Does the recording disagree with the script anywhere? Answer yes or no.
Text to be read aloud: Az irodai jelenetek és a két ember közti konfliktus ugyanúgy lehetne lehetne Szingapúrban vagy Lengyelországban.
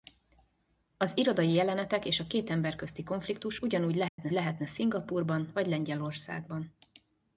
no